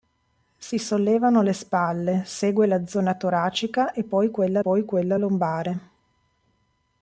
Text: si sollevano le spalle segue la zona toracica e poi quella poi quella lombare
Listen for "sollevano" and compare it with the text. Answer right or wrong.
right